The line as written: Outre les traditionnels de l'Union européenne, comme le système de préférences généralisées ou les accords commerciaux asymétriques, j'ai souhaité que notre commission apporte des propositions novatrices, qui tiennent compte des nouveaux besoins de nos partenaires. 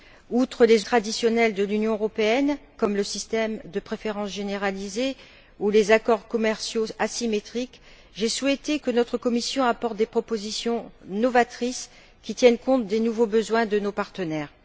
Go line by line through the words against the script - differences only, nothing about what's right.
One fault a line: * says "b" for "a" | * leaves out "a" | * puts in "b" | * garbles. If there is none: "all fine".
all fine